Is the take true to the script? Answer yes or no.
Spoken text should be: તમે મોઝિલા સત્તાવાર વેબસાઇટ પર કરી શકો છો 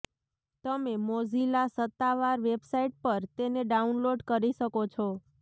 no